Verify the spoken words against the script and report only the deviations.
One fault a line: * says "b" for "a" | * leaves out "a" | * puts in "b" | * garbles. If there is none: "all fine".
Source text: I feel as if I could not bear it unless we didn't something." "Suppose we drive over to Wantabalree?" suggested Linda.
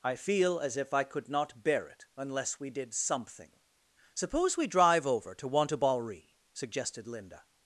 * says "did" for "didn't"